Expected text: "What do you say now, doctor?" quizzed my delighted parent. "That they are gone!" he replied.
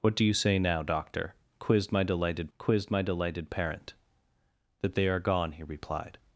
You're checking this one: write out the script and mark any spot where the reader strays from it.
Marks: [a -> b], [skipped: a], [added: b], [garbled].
"What do you say now, doctor?" quizzed my delighted [added: quizzed my delighted] parent. "That they are gone!" he replied.